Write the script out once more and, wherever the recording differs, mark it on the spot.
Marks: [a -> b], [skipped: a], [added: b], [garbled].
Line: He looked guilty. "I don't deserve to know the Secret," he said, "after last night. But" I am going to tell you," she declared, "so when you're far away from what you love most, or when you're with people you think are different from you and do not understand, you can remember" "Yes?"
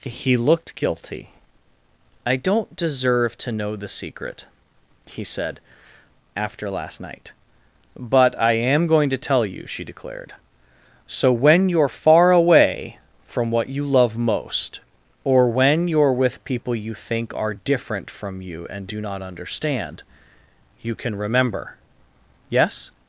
He looked guilty. "I don't deserve to know the Secret," he said, "after last night. But" I am going to tell you," she declared, "so when you're far away from what you love most, or when you're with people you think are different from you and do not understand, you can remember" "Yes?"